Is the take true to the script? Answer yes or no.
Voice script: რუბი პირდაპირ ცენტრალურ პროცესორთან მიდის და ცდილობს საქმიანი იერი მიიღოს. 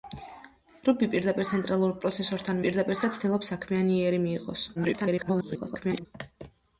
no